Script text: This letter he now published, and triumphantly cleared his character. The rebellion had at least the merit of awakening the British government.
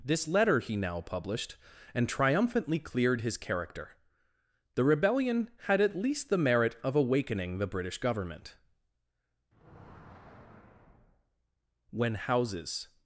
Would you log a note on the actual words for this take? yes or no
yes